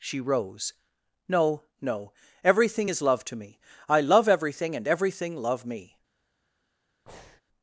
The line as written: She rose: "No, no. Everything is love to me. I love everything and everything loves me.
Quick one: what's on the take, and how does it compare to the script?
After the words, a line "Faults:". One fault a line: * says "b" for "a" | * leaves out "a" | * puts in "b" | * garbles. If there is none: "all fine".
She rose: "No, no. Everything is love to me. I love everything and everything love me.
Faults:
* says "love" for "loves"